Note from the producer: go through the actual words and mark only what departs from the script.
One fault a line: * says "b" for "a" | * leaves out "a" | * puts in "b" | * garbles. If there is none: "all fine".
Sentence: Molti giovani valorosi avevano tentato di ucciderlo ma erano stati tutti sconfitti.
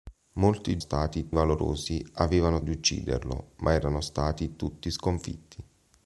* says "stati" for "giovani"
* leaves out "tentato"